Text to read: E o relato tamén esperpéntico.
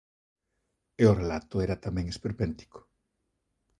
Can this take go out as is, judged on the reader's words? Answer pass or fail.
fail